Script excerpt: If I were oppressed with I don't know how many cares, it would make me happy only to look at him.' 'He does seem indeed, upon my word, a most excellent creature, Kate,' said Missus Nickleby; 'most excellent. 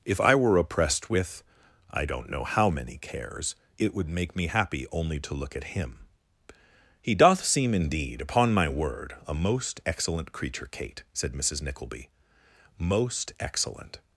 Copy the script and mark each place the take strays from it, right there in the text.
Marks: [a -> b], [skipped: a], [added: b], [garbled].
If I were oppressed with I don't know how many cares, it would make me happy only to look at him.' 'He [does -> doth] seem indeed, upon my word, a most excellent creature, Kate,' said Missus Nickleby; 'most excellent.